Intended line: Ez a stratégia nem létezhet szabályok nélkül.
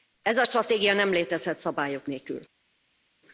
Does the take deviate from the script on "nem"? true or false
false